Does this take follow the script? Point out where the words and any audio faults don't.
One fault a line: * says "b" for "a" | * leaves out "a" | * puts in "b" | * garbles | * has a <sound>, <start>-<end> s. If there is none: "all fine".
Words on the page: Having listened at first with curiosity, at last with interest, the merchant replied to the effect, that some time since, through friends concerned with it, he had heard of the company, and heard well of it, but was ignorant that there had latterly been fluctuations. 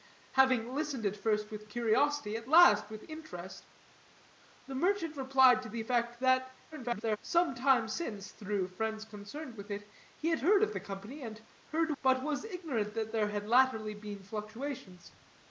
* garbles
* leaves out "well of it"